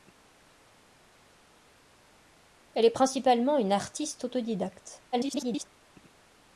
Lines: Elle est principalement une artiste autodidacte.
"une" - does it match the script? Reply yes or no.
yes